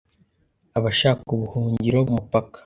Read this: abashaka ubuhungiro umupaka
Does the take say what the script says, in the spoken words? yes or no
yes